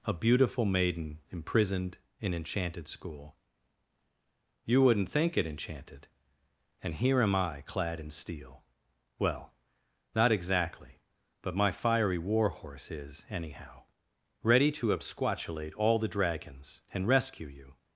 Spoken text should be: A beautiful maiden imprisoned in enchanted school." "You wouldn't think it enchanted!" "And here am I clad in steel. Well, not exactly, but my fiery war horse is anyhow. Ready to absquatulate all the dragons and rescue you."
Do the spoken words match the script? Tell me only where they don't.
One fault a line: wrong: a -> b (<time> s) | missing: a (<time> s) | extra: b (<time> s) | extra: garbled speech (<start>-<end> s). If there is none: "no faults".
no faults